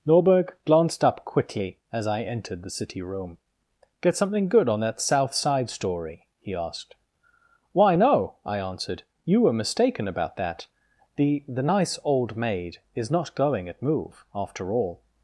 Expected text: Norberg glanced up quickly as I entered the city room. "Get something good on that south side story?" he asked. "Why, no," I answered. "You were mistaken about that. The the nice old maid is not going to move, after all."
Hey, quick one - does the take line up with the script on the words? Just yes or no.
no